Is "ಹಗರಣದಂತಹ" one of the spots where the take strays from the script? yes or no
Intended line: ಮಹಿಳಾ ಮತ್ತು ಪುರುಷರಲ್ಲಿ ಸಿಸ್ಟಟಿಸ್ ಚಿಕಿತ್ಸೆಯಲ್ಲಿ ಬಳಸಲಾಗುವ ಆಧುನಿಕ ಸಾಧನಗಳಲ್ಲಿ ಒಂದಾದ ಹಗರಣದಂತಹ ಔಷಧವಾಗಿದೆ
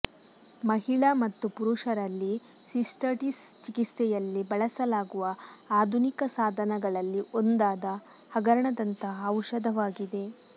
no